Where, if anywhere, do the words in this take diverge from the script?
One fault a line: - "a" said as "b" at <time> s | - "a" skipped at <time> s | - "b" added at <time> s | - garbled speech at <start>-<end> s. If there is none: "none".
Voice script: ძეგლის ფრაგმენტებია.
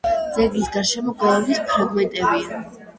- "გარშემო გალავნის" added at 0.8 s